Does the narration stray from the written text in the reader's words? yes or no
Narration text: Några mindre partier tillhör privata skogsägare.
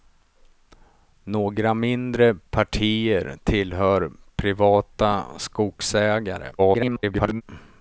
yes